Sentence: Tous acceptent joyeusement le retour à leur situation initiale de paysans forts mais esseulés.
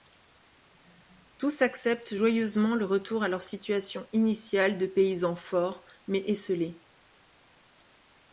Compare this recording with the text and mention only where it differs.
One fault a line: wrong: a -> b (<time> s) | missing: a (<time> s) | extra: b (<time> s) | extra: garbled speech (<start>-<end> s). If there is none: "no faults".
no faults